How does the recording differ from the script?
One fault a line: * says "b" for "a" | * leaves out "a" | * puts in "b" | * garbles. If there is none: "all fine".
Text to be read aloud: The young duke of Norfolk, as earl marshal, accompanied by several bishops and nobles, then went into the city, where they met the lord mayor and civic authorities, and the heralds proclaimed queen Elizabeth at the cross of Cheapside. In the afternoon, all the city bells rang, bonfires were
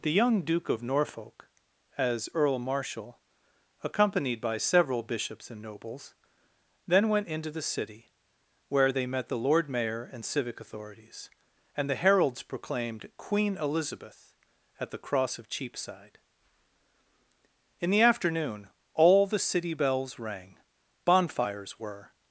all fine